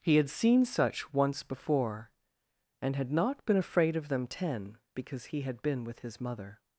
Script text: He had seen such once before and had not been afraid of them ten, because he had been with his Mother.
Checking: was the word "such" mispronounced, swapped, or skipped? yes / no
no